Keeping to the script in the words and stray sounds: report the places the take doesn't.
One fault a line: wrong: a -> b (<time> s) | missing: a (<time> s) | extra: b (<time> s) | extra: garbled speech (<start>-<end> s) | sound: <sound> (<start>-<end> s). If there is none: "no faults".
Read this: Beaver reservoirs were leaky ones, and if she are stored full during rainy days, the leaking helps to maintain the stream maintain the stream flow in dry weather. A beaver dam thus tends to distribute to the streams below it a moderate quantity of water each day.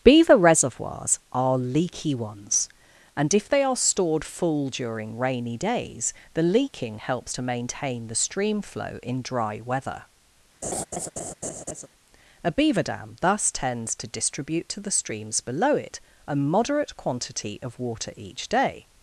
wrong: were -> are (1.3 s)
wrong: she -> they (3.5 s)
missing: maintain the stream (8.6 s)
sound: laugh (10.6-11.9 s)